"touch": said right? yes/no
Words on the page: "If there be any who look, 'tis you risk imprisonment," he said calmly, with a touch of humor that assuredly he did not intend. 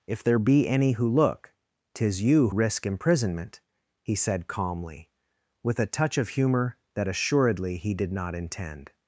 yes